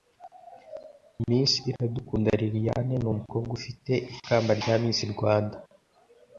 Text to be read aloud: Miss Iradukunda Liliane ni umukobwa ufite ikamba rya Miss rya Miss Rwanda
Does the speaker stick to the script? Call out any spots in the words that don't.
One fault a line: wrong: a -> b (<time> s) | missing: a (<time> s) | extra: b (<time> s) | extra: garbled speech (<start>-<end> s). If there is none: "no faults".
missing: rya Miss (5.0 s)